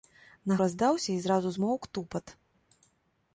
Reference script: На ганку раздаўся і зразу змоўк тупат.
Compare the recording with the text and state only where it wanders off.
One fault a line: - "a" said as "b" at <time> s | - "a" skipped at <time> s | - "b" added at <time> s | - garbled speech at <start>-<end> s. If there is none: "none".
- "ганку" skipped at 0.6 s